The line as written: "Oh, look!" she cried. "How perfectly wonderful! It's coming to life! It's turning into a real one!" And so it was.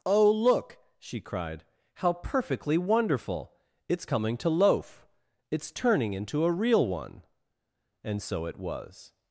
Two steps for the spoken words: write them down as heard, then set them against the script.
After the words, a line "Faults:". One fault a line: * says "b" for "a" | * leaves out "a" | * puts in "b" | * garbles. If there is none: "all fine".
"Oh, look!" she cried. "How perfectly wonderful! It's coming to loaf! It's turning into a real one!" And so it was.
Faults:
* says "loaf" for "life"